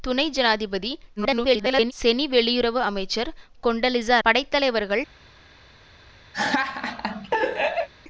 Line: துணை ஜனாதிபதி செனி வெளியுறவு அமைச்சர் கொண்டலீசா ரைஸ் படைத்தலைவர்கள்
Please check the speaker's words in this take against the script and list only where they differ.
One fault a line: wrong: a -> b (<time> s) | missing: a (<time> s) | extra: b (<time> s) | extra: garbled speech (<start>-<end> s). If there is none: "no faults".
extra: garbled speech (1.2-1.9 s)
missing: ரைஸ் (4.2 s)